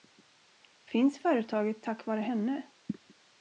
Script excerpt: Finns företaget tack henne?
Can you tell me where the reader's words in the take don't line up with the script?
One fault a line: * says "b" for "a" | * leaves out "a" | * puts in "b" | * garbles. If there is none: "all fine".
* puts in "vare"